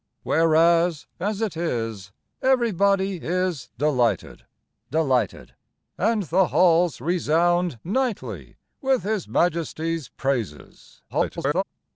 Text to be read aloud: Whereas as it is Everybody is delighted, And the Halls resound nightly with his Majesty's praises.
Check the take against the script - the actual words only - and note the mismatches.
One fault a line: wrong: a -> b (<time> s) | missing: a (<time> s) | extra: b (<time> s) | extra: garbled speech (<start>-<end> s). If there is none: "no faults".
extra: delighted (4.9 s)
extra: garbled speech (11.1-11.6 s)